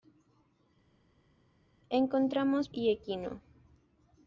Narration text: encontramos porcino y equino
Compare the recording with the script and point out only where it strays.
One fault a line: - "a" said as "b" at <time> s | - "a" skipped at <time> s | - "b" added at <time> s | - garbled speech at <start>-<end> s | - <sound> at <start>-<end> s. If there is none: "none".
- "porcino" skipped at 2.7 s